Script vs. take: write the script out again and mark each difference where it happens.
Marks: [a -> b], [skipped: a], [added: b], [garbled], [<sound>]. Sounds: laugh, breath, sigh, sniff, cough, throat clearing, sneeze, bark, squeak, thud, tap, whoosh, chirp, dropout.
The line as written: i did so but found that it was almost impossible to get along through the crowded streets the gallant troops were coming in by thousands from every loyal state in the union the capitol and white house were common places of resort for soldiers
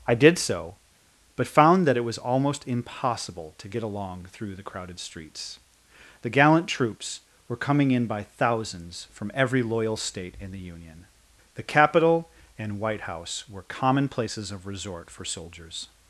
i did so but found that it was almost impossible to get along through the crowded streets the gallant troops were coming in by thousands from every loyal state in the union the capitol and white house were common places of resort for soldiers